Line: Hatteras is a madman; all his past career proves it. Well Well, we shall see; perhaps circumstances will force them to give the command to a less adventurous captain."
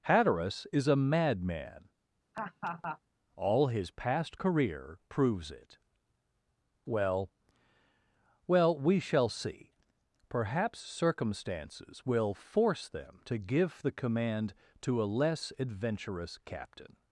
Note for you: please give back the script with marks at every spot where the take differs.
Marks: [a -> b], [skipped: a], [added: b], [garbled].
Hatteras is a madman; all his past career proves it. Well Well, we shall see; perhaps circumstances will force them to give the command to a less adventurous captain."